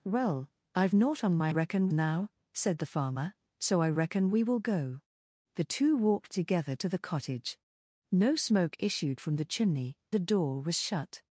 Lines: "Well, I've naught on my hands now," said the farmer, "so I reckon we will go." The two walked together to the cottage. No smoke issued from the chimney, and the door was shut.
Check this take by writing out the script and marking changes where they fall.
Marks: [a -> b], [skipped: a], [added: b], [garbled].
"Well, I've naught on my [hands -> reckon] now," said the farmer, "so I reckon we will go." The two walked together to the cottage. No smoke issued from the chimney, [skipped: and] the door was shut.